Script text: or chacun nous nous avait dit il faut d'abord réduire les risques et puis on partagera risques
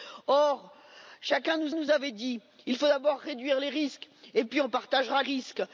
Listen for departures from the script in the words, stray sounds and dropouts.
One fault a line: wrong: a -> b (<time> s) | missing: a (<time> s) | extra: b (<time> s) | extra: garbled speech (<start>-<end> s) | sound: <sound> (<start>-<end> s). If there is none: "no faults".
no faults